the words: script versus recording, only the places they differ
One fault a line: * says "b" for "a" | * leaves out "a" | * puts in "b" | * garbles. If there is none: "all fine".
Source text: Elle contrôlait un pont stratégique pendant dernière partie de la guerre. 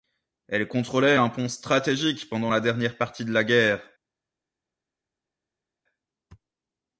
* puts in "la"